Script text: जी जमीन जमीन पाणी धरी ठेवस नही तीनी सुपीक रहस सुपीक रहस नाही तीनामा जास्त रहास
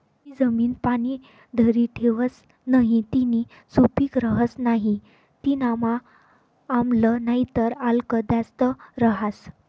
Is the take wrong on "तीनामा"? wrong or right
wrong